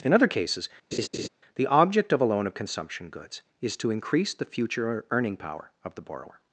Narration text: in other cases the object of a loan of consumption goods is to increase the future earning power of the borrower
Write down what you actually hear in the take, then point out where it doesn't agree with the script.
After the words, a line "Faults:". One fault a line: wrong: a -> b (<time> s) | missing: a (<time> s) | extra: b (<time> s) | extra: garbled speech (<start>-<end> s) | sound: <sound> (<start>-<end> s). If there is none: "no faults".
in other cases the object of a loan of consumption goods is to increase the future earning power of the borrower
Faults:
sound: laugh (0.9-1.3 s)